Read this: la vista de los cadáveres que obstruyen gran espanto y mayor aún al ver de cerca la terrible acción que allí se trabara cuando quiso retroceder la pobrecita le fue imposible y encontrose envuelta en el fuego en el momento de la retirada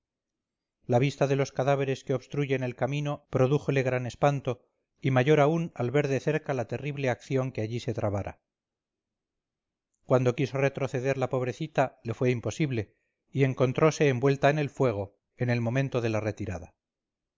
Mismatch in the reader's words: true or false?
true